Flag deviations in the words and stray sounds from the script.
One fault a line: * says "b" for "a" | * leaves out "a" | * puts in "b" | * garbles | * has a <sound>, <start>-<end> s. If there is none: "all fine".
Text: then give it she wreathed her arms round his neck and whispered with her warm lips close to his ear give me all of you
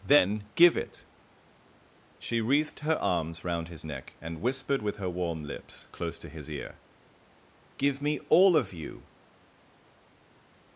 all fine